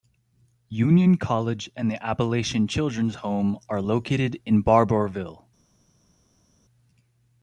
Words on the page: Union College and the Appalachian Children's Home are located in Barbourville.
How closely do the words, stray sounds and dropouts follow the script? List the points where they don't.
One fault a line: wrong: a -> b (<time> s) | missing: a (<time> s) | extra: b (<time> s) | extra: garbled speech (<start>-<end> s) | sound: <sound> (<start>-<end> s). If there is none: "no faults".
no faults